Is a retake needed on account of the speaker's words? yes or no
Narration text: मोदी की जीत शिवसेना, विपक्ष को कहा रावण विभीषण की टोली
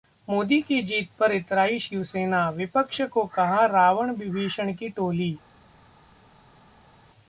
yes